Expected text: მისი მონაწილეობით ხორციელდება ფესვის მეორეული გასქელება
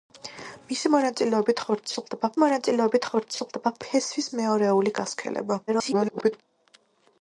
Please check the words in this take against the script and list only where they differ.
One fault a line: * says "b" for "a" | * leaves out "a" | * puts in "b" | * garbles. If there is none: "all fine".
* puts in "მონაწილეობით ხორციელდება"
* garbles